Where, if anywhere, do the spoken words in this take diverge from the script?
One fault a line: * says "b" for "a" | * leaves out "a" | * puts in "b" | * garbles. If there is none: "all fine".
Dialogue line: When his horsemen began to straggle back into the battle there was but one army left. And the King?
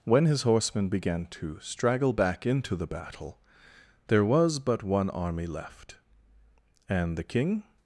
all fine